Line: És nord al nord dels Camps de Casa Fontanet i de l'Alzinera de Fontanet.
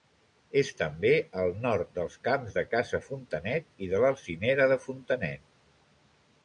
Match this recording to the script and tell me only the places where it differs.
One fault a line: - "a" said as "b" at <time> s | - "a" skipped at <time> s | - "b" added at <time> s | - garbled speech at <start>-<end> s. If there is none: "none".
- "nord" said as "també" at 0.8 s